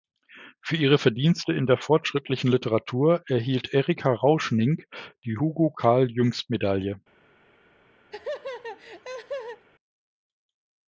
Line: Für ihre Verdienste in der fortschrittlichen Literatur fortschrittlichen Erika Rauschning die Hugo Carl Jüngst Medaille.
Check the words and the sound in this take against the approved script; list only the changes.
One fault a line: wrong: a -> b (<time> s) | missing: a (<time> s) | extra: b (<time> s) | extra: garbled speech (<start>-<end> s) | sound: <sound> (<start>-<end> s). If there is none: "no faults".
wrong: fortschrittlichen -> erhielt (3.3 s)
sound: laugh (8.1-9.7 s)